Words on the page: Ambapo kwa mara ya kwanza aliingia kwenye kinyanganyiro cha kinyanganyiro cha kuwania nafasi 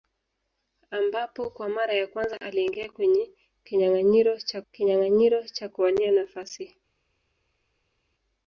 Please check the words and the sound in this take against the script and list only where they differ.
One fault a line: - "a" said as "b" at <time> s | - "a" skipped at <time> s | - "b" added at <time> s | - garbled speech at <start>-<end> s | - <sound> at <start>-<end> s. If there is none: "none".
none